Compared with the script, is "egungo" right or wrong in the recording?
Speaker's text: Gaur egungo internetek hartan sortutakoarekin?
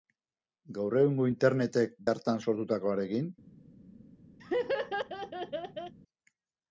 right